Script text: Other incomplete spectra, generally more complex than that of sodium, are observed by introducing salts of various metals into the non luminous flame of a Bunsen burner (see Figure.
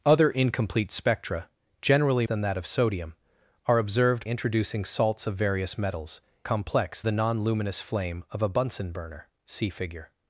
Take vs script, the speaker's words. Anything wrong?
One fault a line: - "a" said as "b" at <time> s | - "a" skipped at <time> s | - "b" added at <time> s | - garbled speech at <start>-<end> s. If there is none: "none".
- "more complex" skipped at 2.2 s
- "by" skipped at 4.3 s
- "into" said as "complex" at 6.4 s